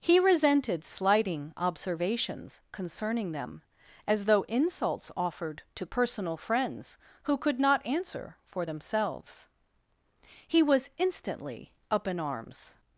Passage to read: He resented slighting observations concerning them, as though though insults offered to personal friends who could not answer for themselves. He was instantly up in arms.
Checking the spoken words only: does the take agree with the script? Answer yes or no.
no